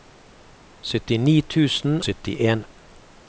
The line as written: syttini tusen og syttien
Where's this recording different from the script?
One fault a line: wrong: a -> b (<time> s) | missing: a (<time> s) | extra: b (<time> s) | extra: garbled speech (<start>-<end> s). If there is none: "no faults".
missing: og (2.0 s)